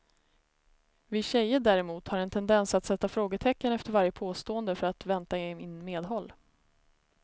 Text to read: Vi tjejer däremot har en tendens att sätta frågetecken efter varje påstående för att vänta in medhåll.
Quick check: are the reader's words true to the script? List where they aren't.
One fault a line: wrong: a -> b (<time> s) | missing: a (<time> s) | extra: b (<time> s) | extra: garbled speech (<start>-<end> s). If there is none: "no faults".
no faults